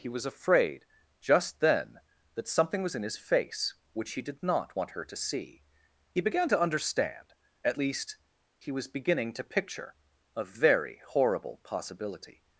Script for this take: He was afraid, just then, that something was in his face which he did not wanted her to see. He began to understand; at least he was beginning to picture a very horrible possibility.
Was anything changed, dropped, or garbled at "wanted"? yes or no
yes